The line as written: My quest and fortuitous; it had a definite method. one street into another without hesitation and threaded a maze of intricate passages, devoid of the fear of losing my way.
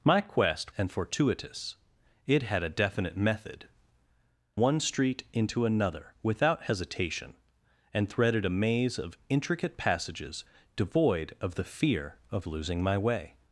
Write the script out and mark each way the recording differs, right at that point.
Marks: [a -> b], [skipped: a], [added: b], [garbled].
My quest and fortuitous; it had a definite method. one street into another without hesitation and threaded a maze of intricate passages, devoid of the fear of losing my way.